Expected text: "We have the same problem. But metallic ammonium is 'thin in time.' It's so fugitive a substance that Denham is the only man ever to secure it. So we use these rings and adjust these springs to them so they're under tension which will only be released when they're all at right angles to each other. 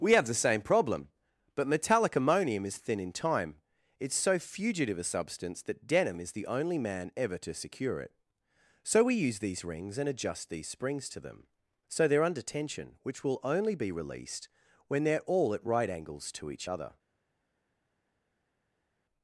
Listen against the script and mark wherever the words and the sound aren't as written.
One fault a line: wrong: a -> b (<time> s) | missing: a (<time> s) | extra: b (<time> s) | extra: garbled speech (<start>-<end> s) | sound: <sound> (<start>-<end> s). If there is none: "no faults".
no faults